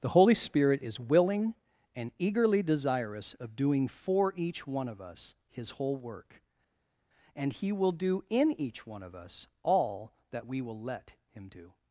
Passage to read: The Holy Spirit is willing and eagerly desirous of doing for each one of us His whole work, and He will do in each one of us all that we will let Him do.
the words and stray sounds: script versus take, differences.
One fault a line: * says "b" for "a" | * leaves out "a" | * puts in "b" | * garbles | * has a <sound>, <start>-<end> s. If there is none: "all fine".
all fine